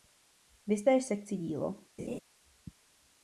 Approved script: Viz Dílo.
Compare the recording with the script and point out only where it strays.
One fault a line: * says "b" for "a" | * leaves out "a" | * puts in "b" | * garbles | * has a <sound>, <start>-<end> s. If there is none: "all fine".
* puts in "též sekci"
* has a laugh, 2.0-2.2 s